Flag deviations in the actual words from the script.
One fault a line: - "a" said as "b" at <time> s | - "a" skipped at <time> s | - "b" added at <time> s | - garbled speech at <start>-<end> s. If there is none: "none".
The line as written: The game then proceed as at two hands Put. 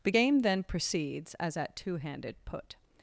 - "proceed" said as "proceeds" at 0.6 s
- "hands" said as "handed" at 2.0 s